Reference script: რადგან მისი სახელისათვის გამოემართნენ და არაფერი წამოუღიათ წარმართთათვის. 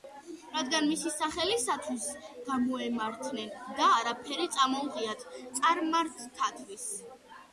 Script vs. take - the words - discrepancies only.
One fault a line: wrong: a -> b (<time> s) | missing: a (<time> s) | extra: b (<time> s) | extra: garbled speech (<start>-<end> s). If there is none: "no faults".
no faults